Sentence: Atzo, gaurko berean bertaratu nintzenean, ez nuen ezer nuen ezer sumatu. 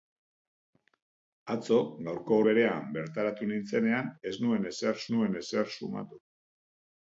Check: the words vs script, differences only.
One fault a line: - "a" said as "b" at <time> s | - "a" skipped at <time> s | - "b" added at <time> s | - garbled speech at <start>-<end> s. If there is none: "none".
none